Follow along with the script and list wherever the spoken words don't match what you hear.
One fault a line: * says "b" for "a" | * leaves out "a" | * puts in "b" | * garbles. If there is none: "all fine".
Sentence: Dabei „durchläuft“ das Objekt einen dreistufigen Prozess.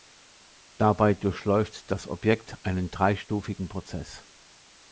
all fine